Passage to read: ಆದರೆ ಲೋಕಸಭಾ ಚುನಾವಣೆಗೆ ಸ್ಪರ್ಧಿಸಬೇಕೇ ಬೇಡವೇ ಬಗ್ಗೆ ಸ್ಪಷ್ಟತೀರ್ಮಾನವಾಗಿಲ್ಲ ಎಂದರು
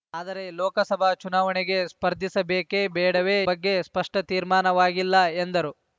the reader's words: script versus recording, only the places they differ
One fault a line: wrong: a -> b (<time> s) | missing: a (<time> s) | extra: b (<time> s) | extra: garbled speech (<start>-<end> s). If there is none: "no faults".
no faults